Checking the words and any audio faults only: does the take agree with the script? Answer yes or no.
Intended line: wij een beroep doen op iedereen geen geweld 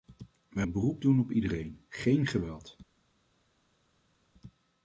yes